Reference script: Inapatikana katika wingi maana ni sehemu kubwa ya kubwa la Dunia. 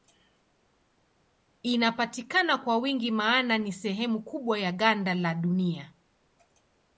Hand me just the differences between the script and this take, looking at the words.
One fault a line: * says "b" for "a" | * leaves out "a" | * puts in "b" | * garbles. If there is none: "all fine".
* says "kwa" for "katika"
* says "ganda" for "kubwa"